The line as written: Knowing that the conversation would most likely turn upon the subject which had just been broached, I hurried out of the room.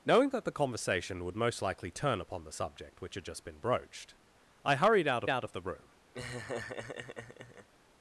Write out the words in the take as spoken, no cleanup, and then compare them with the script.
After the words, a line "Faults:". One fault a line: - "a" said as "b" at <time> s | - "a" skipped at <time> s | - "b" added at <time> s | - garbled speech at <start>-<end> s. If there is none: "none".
Knowing that the conversation would most likely turn upon the subject which had just been broached, I hurried out out of the room.
Faults:
- "out" added at 5.3 s